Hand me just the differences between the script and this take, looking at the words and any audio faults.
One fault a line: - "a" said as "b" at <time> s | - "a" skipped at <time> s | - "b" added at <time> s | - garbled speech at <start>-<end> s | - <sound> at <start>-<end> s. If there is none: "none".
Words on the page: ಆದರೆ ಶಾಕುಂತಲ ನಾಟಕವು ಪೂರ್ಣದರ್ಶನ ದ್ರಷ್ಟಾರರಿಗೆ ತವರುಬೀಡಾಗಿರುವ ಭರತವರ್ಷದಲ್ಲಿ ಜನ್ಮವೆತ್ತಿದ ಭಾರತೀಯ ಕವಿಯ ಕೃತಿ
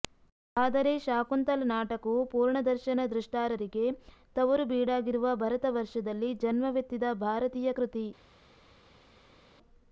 - "ಕವಿಯ" skipped at 7.7 s